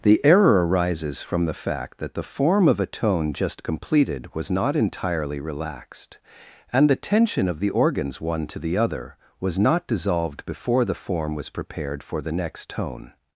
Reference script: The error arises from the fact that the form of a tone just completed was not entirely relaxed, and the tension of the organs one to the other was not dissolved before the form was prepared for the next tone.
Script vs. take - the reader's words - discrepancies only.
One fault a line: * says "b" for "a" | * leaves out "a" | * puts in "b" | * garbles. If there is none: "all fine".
all fine